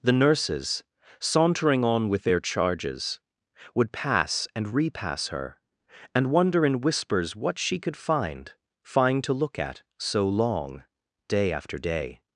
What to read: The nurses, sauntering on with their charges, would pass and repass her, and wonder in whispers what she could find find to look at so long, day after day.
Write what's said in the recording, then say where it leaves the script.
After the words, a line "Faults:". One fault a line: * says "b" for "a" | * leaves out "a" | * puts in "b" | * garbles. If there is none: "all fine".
The nurses, sauntering on with their charges, would pass and repass her, and wonder in whispers what she could find find to look at so long, day after day.
Faults:
all fine